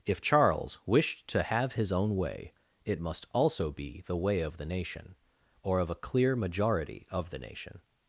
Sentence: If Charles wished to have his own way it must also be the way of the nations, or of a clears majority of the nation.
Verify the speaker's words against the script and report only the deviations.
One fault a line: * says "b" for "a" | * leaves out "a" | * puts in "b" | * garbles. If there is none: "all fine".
* says "nation" for "nations"
* says "clear" for "clears"